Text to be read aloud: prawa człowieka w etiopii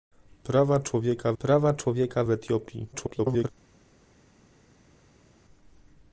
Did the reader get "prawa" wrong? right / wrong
right